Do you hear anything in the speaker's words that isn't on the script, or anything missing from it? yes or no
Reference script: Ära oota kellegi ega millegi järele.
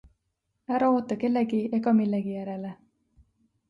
no